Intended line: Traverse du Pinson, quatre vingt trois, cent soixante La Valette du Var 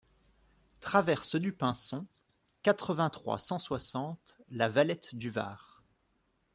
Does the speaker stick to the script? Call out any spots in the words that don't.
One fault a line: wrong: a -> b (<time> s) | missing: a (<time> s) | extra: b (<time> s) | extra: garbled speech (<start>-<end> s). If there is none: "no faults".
no faults